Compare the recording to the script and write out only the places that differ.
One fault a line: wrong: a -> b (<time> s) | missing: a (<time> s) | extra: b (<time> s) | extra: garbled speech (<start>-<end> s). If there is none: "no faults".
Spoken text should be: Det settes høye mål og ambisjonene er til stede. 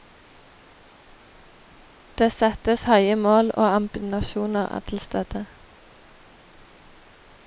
no faults